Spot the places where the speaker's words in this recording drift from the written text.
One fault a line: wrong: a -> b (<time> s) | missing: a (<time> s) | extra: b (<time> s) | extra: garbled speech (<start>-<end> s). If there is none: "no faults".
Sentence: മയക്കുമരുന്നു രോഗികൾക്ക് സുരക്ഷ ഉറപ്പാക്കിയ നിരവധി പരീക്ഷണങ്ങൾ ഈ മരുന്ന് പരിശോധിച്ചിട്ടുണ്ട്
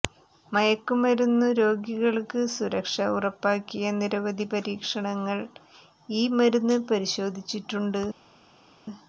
no faults